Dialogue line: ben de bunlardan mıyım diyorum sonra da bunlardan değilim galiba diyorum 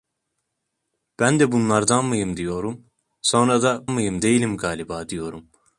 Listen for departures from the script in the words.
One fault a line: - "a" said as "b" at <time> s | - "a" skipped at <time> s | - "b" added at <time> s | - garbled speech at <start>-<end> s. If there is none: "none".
- "bunlardan" said as "mıyım" at 3.9 s